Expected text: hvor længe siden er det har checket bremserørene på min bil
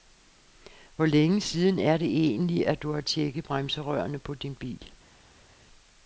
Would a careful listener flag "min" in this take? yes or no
yes